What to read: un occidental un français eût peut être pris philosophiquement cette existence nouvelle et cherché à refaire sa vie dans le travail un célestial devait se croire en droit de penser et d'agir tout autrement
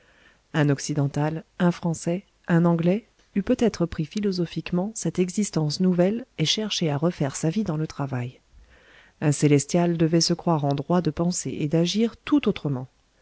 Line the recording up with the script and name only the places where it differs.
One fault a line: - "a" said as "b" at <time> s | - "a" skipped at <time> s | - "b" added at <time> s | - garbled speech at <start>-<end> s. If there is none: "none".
- "un anglais" added at 2.5 s